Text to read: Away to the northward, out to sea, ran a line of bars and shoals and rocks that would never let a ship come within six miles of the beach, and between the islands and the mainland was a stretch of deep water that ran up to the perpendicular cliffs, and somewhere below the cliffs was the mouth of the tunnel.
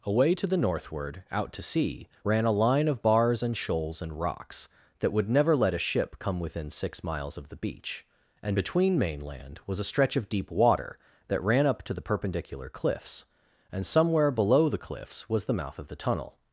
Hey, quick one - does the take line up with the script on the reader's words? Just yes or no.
no